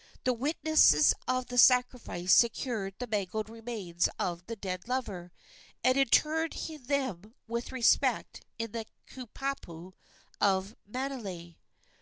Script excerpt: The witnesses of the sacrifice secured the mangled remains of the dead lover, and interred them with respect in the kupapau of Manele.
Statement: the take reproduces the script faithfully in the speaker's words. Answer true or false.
true